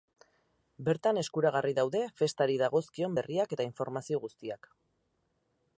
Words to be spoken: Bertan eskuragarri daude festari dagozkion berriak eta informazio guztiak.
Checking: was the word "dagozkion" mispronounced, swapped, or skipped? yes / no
no